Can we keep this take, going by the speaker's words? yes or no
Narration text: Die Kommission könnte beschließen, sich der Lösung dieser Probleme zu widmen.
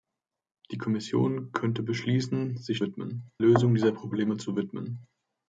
no